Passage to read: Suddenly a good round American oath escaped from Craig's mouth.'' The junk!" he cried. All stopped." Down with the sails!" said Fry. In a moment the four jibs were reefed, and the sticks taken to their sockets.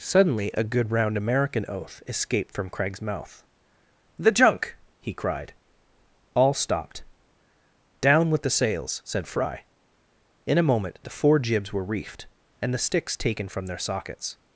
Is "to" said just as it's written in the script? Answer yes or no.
no